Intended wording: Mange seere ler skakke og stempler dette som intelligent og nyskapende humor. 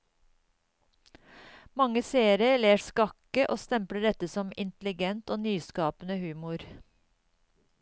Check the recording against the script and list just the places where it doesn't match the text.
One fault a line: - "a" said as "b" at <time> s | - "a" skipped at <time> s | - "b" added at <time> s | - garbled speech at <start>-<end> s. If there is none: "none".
none